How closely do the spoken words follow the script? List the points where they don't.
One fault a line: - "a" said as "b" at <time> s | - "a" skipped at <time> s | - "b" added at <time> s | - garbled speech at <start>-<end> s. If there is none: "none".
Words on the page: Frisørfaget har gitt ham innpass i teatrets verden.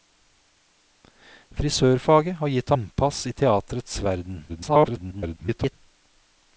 - "ham" skipped at 2.7 s
- garbled speech at 4.5-5.7 s